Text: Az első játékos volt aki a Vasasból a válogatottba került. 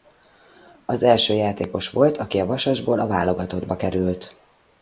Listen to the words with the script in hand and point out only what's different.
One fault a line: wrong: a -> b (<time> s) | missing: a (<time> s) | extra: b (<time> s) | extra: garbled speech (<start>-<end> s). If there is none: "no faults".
no faults